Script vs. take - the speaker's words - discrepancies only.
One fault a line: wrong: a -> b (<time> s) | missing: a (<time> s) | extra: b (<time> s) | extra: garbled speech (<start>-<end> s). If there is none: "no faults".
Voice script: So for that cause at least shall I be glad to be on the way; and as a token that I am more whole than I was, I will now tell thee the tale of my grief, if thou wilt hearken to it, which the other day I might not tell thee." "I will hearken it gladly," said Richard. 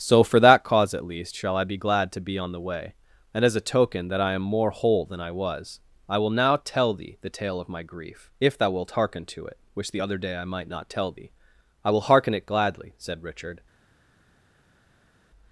no faults